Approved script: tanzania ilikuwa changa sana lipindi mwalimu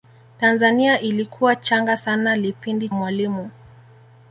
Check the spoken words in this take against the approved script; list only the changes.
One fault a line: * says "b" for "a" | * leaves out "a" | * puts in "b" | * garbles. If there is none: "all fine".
all fine